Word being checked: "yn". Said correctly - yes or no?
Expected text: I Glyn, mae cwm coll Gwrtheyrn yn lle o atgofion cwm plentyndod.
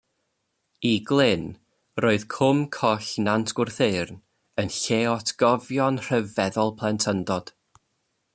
yes